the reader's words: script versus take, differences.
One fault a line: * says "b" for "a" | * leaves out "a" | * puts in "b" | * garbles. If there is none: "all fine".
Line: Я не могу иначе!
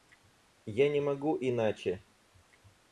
all fine